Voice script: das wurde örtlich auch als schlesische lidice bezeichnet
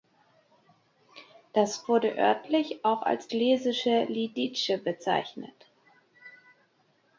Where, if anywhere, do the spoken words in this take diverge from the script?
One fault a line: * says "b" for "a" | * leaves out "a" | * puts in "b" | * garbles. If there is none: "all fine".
all fine